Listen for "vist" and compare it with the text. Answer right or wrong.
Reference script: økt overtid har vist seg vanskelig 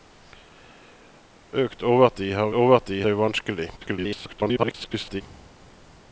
wrong